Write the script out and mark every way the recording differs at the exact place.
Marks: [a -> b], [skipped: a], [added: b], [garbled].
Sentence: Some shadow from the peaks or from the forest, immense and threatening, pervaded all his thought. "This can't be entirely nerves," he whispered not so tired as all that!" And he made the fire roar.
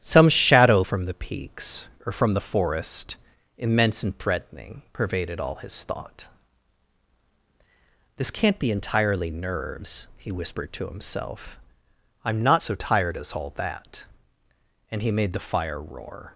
Some shadow from the peaks or from the forest, immense and threatening, pervaded all his thought. "This can't be entirely nerves," he whispered [added: to himself I'm] not so tired as all that!" And he made the fire roar.